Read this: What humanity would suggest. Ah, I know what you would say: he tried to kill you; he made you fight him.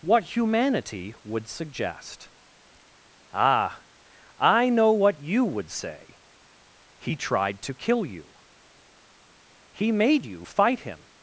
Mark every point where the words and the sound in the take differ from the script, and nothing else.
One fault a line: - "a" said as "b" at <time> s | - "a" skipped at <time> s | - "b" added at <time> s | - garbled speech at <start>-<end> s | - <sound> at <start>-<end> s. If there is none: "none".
none